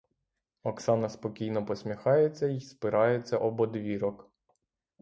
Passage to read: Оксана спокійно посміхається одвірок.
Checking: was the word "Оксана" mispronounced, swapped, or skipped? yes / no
no